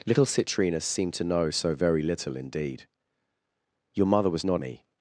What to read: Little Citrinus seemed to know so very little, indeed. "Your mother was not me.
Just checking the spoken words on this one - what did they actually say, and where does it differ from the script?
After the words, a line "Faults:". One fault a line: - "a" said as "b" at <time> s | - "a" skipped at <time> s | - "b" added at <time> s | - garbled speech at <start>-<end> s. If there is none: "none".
Little Citrinus seemed to know so very little, indeed. "Your mother was not me.
Faults:
none